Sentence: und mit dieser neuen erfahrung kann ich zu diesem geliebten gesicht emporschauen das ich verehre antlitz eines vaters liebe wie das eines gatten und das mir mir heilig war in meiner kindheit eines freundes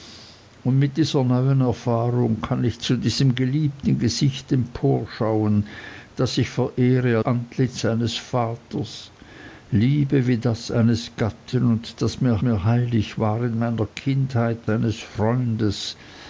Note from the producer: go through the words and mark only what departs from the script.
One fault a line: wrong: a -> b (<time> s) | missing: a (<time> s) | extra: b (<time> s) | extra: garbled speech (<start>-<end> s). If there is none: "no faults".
no faults